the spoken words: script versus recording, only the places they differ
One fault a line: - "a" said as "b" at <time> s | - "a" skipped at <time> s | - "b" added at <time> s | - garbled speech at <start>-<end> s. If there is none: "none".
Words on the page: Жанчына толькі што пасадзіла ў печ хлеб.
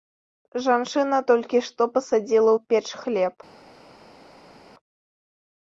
none